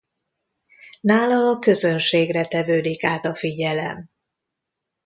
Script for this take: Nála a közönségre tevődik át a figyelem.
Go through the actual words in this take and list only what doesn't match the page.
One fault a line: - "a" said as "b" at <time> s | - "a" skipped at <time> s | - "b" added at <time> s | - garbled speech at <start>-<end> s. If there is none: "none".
none